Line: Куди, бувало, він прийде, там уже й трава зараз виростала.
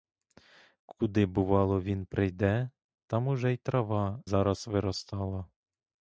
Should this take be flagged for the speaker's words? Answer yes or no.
no